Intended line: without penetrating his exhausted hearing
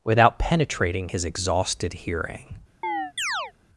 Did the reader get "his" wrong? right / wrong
right